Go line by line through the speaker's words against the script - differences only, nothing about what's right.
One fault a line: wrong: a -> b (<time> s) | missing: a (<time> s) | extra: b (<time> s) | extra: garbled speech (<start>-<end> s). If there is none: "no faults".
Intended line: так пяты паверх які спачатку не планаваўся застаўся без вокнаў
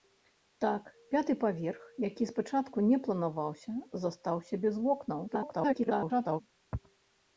extra: garbled speech (5.3-6.4 s)